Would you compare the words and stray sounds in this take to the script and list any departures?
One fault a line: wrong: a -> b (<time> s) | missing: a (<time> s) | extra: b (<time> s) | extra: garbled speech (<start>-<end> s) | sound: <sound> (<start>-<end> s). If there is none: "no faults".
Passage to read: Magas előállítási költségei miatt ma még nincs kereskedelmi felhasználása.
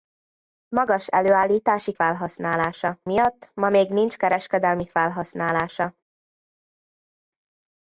wrong: költségei -> felhasználása (1.9 s)